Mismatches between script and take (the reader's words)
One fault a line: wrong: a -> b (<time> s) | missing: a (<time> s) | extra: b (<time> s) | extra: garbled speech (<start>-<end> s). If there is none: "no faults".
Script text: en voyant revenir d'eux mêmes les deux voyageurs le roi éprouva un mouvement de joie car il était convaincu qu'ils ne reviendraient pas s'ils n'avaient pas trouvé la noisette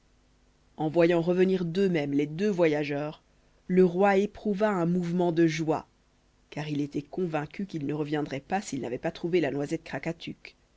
no faults